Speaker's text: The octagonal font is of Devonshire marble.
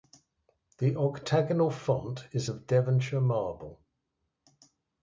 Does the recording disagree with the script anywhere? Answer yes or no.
no